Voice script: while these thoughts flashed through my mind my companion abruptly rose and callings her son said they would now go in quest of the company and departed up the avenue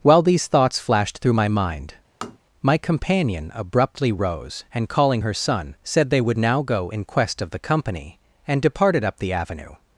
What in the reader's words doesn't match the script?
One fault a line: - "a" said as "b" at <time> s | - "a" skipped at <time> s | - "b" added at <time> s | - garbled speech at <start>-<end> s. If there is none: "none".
- "callings" said as "calling" at 4.9 s